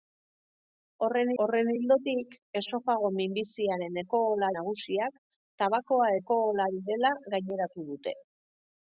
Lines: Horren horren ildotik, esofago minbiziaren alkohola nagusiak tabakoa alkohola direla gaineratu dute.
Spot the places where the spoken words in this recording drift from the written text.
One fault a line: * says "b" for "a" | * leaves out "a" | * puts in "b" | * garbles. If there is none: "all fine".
all fine